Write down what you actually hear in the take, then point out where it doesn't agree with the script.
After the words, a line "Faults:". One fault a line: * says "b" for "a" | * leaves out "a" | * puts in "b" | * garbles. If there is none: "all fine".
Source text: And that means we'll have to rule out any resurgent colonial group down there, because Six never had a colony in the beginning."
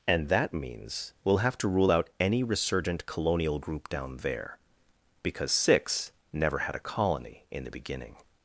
And that means we'll have to rule out any resurgent colonial group down there, because Six never had a colony in the beginning."
Faults:
all fine